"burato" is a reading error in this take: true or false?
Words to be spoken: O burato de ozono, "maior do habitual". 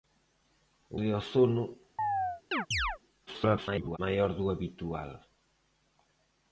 true